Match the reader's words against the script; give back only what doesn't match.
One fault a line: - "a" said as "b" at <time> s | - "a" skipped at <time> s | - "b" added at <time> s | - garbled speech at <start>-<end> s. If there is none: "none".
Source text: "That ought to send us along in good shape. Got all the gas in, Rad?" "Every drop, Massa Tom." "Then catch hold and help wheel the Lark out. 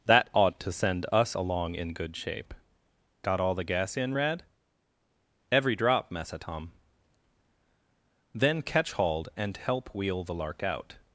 - "hold" said as "hauled" at 8.9 s